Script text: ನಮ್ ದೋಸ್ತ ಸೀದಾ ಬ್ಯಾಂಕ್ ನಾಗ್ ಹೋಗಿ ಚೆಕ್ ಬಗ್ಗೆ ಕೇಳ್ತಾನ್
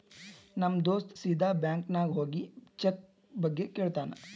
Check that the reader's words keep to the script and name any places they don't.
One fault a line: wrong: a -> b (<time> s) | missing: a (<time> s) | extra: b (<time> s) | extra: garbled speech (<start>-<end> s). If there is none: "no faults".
no faults